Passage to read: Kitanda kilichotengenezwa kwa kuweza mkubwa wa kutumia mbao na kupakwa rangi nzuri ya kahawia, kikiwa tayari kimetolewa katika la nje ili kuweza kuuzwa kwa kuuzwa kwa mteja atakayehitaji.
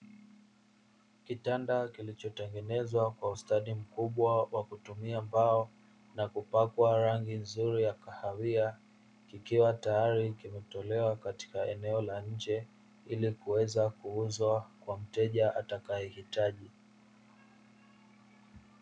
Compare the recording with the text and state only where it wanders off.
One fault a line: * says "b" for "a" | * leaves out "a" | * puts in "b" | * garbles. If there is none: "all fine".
* says "ustadi" for "kuweza"
* puts in "eneo"
* leaves out "kuuzwa kwa"